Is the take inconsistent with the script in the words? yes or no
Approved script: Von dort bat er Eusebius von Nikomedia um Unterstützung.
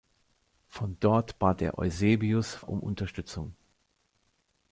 yes